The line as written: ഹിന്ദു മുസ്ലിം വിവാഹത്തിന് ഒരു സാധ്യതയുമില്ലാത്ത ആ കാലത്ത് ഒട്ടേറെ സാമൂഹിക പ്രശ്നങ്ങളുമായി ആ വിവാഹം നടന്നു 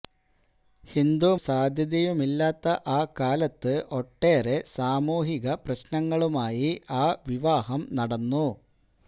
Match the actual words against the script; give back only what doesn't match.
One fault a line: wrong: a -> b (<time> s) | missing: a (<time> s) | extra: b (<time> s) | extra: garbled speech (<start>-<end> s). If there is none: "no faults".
missing: മുസ്ലിം വിവാഹത്തിന് ഒരു (1.3 s)